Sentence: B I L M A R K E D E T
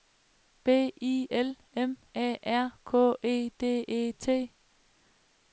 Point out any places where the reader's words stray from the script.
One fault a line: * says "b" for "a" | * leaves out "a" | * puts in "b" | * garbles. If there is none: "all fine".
all fine